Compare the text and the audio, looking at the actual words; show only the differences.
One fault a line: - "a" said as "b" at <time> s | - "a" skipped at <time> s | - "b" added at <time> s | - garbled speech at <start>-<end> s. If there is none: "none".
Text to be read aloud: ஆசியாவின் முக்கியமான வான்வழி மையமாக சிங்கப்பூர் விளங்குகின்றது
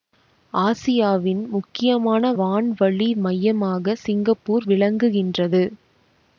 none